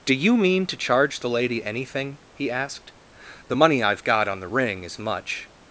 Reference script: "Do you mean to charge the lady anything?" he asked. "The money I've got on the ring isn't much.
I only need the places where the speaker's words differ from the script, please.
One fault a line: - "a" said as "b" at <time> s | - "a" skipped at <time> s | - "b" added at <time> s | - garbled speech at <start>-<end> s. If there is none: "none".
- "isn't" said as "is" at 4.8 s